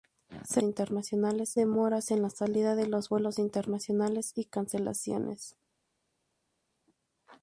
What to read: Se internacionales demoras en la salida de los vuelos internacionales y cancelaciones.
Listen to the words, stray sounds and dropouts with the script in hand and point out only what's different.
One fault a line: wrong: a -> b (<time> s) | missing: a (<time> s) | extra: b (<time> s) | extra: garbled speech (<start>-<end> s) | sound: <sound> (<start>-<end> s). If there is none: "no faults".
no faults